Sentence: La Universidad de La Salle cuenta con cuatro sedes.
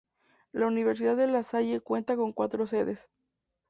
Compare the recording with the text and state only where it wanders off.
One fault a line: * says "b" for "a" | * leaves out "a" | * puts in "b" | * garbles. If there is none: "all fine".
all fine